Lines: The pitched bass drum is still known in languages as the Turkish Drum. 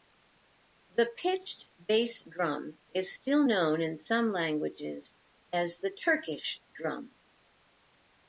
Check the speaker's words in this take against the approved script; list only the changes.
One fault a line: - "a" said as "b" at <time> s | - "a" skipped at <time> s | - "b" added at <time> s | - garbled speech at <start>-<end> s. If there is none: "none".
- "some" added at 4.0 s